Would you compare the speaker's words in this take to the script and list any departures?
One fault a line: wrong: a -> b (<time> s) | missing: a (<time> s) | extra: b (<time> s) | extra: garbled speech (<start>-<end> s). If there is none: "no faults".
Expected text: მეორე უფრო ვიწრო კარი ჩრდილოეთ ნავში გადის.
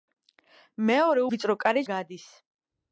missing: უფრო (1.2 s)
missing: ჩრდილოეთ ნავში (1.9 s)